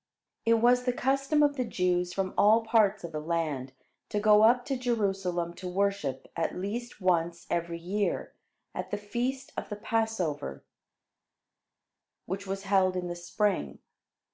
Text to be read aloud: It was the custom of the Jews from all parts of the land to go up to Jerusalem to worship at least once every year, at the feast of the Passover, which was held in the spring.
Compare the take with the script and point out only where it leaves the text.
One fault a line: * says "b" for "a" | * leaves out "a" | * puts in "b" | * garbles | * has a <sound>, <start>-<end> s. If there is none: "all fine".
all fine